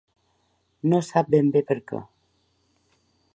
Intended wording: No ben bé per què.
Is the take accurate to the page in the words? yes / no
no